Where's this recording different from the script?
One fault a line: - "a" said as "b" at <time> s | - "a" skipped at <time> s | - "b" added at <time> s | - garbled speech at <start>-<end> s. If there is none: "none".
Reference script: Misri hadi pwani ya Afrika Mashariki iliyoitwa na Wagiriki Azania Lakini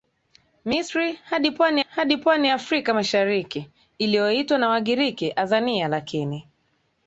- "hadi pwani" added at 1.8 s